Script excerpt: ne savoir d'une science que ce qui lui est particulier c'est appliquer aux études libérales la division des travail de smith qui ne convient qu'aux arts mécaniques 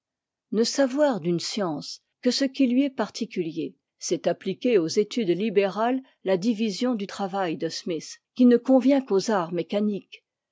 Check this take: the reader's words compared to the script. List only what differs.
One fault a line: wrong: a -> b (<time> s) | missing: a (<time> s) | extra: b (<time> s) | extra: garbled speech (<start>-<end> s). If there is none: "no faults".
wrong: des -> du (7.0 s)